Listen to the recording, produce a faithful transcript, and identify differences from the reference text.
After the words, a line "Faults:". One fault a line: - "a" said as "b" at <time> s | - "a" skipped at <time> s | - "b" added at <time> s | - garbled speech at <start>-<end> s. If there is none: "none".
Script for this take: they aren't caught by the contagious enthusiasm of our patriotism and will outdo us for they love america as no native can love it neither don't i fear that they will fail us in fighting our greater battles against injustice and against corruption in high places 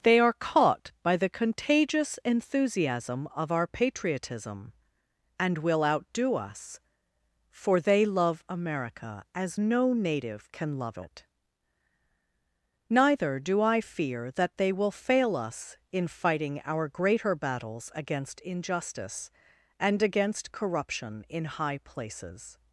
they are caught by the contagious enthusiasm of our patriotism and will outdo us for they love america as no native can love it neither do i fear that they will fail us in fighting our greater battles against injustice and against corruption in high places
Faults:
- "aren't" said as "are" at 0.2 s
- "don't" said as "do" at 13.4 s